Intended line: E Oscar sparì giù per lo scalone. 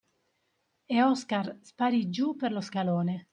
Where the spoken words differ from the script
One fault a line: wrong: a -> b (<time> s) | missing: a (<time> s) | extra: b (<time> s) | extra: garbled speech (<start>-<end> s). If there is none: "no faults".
no faults